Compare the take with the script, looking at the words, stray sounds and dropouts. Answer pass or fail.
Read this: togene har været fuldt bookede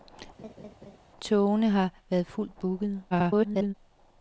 fail